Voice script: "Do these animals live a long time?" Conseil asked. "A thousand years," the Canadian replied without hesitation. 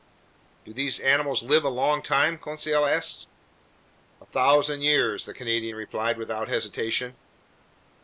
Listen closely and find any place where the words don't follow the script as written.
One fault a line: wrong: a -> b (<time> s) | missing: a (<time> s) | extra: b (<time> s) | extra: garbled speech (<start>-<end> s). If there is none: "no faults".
no faults